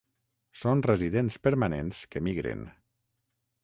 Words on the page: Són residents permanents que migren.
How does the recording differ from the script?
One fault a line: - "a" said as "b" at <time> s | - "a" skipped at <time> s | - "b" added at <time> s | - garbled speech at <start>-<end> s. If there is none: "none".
none